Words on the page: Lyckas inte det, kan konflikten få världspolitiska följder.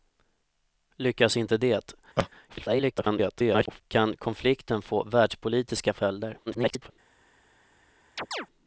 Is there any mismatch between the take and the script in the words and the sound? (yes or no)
yes